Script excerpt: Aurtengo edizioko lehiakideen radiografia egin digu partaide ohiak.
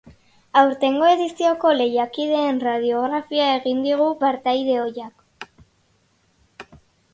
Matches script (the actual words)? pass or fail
pass